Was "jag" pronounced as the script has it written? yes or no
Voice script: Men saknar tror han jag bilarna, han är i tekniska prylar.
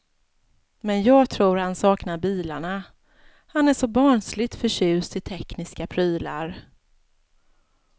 no